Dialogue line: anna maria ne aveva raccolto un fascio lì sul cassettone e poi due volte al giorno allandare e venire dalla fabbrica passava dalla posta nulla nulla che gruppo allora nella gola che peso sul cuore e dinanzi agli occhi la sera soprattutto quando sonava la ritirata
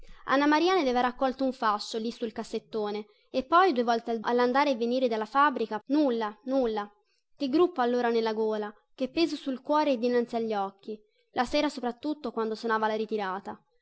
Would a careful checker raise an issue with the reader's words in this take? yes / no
yes